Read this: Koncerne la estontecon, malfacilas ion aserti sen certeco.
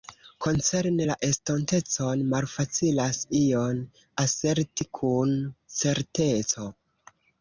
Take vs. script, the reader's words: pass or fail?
fail